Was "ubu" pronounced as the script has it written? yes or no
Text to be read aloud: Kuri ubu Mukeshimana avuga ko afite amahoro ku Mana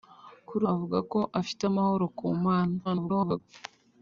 no